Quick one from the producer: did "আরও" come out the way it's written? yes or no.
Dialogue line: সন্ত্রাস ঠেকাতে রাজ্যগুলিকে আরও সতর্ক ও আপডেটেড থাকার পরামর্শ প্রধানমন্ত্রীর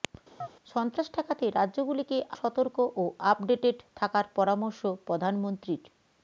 no